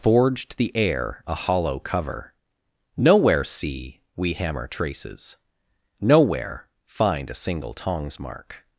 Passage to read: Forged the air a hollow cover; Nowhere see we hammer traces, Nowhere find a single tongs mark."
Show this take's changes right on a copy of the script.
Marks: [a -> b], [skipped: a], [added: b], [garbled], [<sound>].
Forged the air a hollow cover; Nowhere see we hammer traces, Nowhere find a single tongs mark."